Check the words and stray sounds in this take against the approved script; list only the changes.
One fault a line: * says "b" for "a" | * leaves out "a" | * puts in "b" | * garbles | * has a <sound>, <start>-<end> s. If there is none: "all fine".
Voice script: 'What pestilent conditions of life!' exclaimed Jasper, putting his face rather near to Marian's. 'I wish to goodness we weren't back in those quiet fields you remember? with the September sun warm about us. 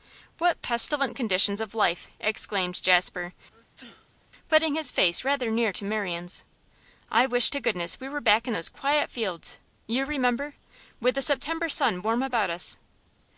* has a sneeze, 3.5-4.3 s
* says "were" for "weren't"